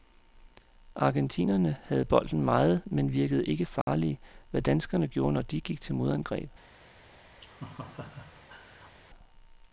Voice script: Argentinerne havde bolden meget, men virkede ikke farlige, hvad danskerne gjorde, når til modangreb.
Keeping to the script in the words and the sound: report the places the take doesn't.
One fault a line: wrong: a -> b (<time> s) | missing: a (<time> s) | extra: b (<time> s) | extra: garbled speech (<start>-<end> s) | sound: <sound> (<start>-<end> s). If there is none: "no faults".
sound: dropout (3.8-3.9 s)
extra: de gik (5.4 s)
sound: laugh (7.4-9.0 s)